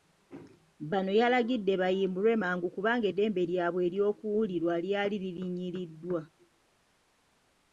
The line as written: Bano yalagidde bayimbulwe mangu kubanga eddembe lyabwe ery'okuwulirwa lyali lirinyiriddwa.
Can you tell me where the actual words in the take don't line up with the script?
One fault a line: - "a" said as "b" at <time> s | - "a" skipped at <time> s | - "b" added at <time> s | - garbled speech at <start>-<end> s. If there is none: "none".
none